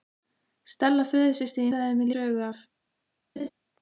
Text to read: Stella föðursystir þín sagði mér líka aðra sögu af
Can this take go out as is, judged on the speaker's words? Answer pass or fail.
fail